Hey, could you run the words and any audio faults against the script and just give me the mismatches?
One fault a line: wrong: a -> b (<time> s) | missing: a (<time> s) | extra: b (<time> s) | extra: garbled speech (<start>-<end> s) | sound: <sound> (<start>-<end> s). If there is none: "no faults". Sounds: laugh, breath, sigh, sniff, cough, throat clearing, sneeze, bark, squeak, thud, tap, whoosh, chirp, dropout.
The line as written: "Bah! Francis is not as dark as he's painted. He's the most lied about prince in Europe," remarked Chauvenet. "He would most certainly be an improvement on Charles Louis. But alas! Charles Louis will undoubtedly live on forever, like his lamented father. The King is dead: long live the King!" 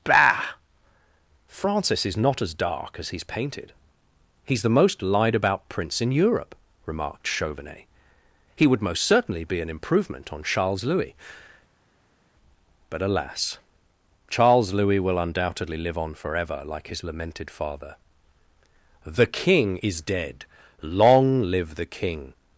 no faults